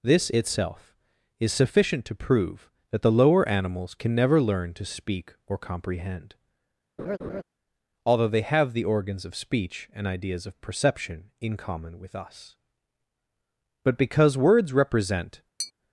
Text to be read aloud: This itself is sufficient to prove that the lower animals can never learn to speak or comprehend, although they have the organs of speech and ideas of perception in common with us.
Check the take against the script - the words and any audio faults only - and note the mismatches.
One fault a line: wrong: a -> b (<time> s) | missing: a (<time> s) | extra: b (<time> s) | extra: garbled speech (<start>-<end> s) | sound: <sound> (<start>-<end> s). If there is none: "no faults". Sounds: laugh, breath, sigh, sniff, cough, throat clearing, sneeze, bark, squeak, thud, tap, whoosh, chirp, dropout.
sound: laugh (7.0-7.4 s)
extra: But because words represent (13.8 s)
sound: tap (15.6-15.7 s)